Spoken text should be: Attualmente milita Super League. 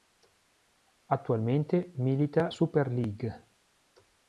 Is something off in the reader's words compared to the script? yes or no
no